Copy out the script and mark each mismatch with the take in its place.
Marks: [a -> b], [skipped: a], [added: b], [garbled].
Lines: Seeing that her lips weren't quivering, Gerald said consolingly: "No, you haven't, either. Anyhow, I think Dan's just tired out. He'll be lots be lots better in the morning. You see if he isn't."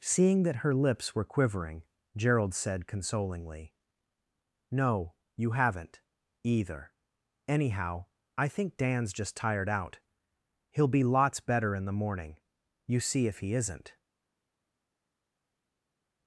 Seeing that her lips [weren't -> were] quivering, Gerald said consolingly: "No, you haven't, either. Anyhow, I think Dan's just tired out. He'll be lots [skipped: be lots] better in the morning. You see if he isn't."